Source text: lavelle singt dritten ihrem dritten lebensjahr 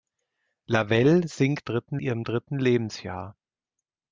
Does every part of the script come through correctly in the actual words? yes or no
yes